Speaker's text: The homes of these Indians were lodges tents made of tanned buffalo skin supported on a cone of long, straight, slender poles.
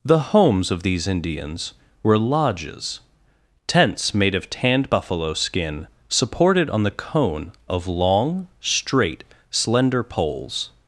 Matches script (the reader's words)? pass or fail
fail